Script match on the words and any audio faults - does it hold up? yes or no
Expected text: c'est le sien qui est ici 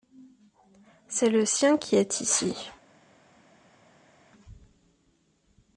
yes